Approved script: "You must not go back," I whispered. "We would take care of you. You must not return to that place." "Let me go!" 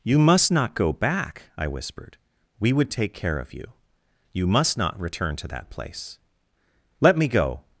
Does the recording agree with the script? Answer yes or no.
yes